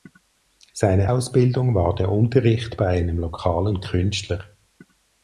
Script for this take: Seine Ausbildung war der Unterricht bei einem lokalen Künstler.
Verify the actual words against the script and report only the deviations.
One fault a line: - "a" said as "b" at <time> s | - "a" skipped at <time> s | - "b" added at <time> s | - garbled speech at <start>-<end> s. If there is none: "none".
none